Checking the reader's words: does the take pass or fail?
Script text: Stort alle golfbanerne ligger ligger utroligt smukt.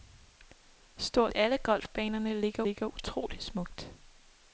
pass